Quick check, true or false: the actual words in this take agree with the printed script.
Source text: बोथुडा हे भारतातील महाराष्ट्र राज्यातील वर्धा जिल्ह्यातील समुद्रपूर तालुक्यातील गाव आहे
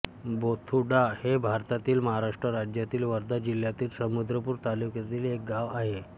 false